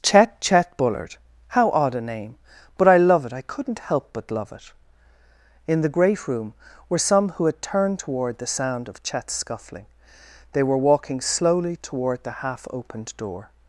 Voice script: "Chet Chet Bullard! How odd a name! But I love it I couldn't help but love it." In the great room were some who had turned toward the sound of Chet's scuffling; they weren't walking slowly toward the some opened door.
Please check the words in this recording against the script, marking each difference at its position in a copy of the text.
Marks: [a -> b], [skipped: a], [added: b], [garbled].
"Chet Chet Bullard! How odd a name! But I love it I couldn't help but love it." In the great room were some who had turned toward the sound of Chet's scuffling; they [weren't -> were] walking slowly toward the [some -> half] opened door.